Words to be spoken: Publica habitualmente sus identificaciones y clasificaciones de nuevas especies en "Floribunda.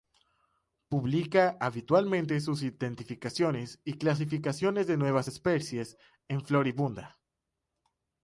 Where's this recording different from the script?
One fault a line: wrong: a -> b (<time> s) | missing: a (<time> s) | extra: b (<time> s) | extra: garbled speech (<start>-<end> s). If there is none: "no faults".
no faults